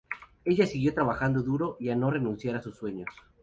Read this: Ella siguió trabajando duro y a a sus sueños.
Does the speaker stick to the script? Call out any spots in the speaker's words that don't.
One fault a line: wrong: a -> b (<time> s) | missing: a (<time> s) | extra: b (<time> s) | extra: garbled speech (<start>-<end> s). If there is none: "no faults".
extra: no renunciar (1.9 s)